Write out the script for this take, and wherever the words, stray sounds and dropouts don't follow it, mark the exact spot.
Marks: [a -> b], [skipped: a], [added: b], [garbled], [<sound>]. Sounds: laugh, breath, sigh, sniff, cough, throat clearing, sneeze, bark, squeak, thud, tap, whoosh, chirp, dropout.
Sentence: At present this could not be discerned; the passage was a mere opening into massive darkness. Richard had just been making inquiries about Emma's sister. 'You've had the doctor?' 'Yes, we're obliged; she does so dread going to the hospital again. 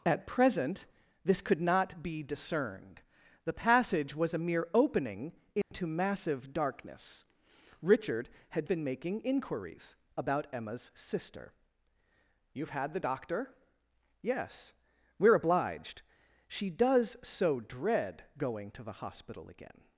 At present this could not be discerned; the passage was a mere opening into [dropout] massive darkness. Richard had [skipped: just] been making inquiries about Emma's sister. 'You've had the doctor?' 'Yes, we're obliged; she does so dread going to the hospital again.